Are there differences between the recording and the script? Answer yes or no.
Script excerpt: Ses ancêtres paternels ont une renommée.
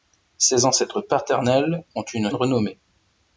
no